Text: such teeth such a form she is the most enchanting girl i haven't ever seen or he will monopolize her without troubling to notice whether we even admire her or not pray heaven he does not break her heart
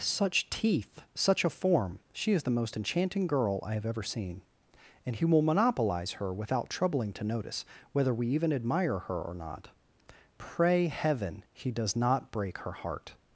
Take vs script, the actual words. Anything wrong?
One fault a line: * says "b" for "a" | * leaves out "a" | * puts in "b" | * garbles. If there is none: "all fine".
* says "have" for "haven't"
* says "and" for "or"